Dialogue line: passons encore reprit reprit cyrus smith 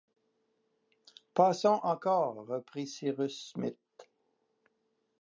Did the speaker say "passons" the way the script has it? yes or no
yes